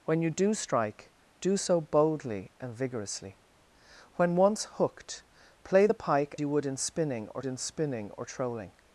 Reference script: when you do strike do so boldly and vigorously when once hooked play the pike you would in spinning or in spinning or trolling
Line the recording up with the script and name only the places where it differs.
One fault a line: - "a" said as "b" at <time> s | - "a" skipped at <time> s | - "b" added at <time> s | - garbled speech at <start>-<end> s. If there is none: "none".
none